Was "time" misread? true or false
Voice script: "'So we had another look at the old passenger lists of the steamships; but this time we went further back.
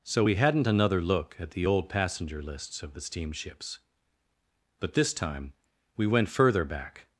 false